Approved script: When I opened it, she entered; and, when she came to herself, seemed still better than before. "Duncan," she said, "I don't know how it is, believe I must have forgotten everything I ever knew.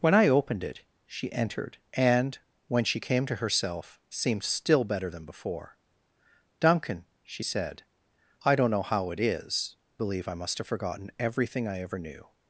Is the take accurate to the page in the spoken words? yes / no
yes